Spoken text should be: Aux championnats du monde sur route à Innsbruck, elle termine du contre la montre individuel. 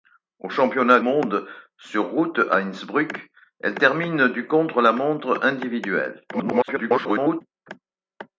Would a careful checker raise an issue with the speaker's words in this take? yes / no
yes